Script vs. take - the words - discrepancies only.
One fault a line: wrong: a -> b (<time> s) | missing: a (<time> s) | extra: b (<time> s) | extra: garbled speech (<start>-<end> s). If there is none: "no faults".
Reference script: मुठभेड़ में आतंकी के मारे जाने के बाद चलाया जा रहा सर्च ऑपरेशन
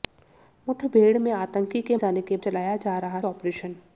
missing: मारे (2.0 s)
missing: बाद (2.4 s)
missing: सर्च (3.2 s)